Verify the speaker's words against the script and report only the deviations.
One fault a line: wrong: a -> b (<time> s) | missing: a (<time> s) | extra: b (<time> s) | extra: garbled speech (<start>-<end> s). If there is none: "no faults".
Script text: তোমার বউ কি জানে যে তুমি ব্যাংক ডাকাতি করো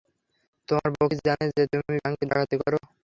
no faults